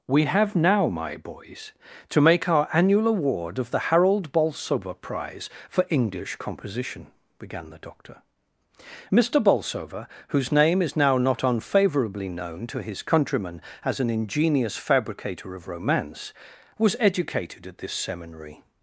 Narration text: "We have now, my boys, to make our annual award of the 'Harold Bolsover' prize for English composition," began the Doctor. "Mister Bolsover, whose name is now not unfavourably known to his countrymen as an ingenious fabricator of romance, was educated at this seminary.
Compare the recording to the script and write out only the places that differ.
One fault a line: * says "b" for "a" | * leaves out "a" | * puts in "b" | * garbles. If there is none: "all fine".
all fine